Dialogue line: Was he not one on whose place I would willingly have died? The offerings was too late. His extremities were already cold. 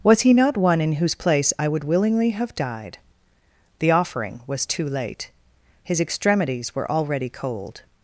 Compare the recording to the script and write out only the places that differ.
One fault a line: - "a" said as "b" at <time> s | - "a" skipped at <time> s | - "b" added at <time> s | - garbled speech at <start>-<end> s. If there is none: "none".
- "on" said as "in" at 0.8 s
- "offerings" said as "offering" at 3.9 s